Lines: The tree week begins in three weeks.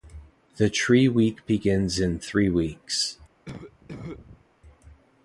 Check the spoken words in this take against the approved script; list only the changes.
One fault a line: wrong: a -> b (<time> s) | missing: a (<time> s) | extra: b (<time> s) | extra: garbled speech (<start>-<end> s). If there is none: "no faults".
no faults